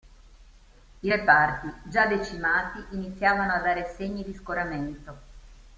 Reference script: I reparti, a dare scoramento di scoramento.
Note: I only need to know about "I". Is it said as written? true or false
true